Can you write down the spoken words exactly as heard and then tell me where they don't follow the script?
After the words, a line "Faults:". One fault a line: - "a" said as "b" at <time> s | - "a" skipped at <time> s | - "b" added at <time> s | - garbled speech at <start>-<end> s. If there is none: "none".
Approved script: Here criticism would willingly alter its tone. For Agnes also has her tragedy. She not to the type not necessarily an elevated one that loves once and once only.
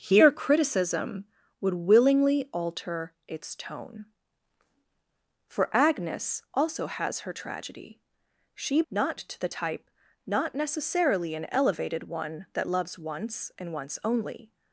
Here criticism would willingly alter its tone. For Agnes also has her tragedy. She not to the type not necessarily an elevated one that loves once and once only.
Faults:
none